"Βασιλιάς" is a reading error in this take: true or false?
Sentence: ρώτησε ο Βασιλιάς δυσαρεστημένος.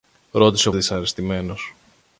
true